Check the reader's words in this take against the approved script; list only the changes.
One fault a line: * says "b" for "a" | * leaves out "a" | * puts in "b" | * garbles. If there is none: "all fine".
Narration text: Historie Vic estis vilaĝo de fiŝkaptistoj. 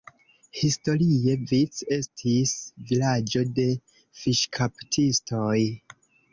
all fine